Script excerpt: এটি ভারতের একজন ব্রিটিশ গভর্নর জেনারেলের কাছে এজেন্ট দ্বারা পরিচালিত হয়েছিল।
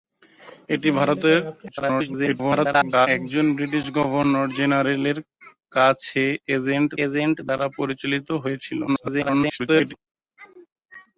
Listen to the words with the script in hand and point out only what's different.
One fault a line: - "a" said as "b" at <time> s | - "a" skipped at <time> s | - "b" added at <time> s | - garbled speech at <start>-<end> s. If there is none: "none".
- garbled speech at 1.7-3.1 s
- "এজেন্ট" added at 7.0 s
- garbled speech at 8.9-9.9 s